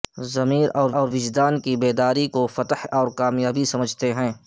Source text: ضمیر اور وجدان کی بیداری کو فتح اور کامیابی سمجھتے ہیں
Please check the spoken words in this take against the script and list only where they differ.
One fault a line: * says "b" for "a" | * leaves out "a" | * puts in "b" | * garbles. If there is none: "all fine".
* puts in "اور"